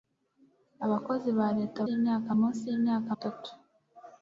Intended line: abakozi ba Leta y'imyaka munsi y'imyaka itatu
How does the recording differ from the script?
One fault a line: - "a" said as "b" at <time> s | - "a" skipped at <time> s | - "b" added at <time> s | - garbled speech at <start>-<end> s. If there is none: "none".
none